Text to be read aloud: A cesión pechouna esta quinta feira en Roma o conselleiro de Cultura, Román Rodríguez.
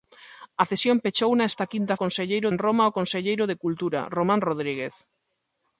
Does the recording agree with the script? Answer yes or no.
no